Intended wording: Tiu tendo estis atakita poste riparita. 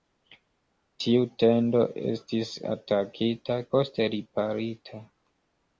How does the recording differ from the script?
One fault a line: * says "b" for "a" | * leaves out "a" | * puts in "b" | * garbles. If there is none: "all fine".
all fine